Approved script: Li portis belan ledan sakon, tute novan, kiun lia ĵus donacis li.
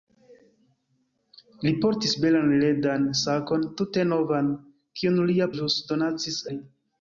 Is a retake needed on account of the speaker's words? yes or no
no